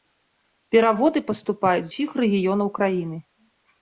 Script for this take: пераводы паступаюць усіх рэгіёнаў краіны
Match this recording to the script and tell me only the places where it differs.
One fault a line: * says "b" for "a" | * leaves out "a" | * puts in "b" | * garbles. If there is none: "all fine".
all fine